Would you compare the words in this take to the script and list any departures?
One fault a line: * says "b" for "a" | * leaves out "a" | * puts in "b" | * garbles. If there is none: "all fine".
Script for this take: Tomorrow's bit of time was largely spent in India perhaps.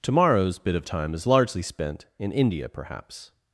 * says "is" for "was"